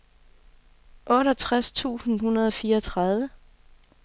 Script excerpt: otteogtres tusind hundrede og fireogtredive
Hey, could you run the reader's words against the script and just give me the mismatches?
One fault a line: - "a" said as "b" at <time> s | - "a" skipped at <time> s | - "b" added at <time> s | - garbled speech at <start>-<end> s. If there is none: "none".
none